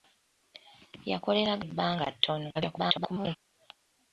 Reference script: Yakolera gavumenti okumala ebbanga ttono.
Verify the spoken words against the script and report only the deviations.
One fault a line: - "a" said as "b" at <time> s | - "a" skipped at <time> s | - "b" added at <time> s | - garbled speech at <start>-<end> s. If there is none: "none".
- "gavumenti okumala" skipped at 1.5 s
- garbled speech at 2.5-3.4 s